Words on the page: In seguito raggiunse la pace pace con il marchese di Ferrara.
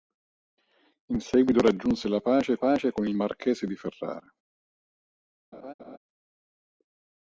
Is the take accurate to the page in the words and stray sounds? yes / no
no